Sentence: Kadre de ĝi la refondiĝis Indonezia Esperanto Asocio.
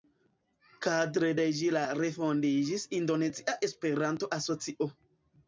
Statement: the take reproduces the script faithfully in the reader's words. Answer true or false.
true